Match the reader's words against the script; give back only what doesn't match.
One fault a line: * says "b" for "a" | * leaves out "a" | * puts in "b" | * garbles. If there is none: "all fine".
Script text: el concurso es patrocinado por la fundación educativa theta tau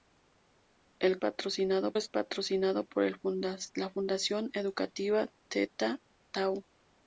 * says "patrocinado" for "concurso"